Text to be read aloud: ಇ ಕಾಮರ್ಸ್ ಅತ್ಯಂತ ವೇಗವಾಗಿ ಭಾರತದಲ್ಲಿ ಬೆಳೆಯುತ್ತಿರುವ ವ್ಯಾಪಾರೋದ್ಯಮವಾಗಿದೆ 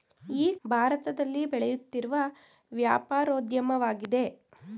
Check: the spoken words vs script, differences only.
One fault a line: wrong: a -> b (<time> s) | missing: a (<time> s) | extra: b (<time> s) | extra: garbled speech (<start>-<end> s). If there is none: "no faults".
missing: ಕಾಮರ್ಸ್ ಅತ್ಯಂತ ವೇಗವಾಗಿ (0.6 s)